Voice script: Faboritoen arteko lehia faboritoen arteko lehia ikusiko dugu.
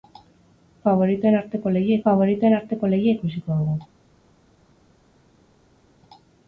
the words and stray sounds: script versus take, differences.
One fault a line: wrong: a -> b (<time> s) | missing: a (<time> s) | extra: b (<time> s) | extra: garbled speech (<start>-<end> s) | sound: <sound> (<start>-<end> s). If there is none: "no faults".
no faults